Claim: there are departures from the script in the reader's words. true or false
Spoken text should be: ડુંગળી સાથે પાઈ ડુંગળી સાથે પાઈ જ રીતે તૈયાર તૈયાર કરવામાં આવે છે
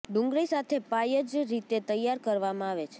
true